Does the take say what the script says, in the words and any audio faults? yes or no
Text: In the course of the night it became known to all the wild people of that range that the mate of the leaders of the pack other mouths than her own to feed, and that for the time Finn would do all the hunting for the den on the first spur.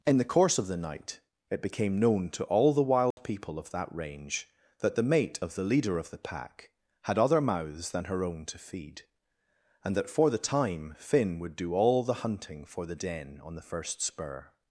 no